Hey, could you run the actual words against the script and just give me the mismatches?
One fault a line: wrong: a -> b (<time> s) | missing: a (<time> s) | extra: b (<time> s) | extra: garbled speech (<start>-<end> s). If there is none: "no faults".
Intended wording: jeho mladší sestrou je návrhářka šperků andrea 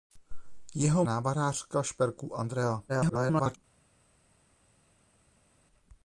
missing: mladší sestrou je (1.1 s)
extra: garbled speech (2.9-3.6 s)